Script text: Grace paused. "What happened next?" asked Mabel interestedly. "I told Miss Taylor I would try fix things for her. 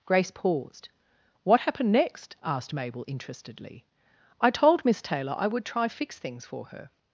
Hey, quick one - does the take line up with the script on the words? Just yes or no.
yes